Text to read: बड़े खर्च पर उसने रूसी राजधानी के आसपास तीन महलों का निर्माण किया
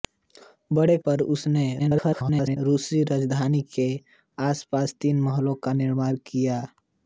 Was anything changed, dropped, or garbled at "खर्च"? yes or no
yes